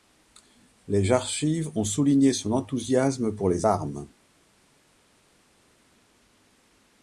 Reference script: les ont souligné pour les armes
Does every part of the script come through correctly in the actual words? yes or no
no